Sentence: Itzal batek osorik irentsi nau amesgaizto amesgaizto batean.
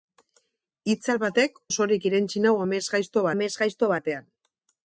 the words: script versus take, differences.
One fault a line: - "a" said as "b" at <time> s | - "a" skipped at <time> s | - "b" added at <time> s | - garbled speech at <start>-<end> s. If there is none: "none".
none